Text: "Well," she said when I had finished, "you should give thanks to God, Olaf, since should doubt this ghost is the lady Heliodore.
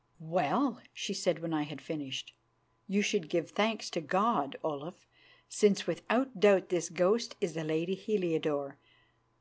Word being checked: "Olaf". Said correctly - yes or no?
yes